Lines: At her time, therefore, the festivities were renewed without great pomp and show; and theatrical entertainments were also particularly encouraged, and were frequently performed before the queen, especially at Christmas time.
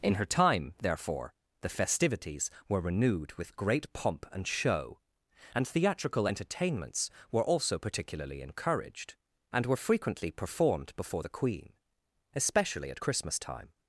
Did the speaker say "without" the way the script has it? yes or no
no